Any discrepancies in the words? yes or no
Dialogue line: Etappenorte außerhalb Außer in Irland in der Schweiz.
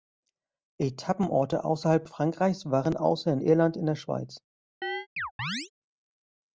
yes